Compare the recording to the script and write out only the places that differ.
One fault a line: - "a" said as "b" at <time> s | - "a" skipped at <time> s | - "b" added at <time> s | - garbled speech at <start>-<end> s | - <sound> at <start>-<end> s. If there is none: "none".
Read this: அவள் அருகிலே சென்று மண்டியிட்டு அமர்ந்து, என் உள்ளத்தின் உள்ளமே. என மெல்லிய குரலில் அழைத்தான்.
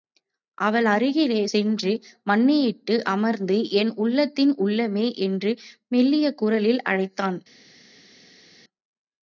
- "என" said as "என்று" at 5.2 s